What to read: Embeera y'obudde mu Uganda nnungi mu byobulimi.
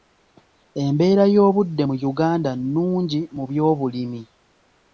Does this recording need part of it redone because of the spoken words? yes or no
no